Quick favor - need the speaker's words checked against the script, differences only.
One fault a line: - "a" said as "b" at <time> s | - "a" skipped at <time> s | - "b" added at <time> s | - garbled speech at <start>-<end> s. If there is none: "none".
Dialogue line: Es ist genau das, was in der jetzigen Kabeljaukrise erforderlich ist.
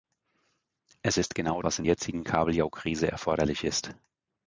- "das" skipped at 1.6 s
- "der" skipped at 1.8 s